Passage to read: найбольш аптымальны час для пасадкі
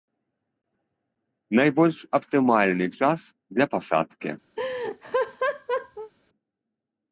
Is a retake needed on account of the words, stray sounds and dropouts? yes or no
yes